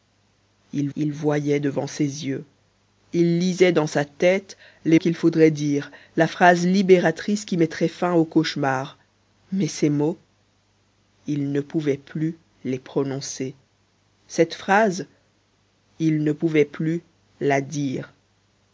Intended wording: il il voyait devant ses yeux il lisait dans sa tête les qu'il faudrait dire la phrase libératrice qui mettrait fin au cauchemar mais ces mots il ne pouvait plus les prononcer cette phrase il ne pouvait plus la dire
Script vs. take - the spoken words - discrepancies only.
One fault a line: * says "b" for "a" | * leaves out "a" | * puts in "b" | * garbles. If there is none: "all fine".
all fine